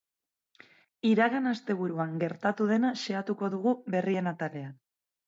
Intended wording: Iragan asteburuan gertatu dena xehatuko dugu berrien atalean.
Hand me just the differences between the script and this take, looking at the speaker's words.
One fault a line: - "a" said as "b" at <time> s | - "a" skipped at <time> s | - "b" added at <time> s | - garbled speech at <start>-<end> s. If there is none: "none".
none